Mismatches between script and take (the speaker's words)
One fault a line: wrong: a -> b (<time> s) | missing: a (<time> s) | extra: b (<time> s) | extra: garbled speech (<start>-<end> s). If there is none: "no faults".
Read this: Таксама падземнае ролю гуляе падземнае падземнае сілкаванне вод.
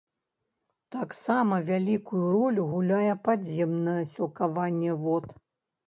wrong: падземнае -> вялікую (1.7 s)
missing: падземнае (4.0 s)